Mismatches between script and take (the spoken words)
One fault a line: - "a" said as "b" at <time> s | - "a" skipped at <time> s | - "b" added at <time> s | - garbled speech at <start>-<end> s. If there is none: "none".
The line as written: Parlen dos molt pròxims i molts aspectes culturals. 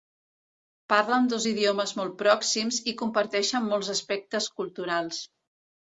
- "idiomes" added at 1.5 s
- "comparteixen" added at 3.0 s